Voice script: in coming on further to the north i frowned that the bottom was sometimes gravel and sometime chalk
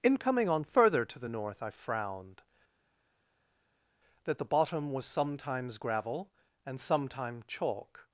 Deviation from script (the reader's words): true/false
false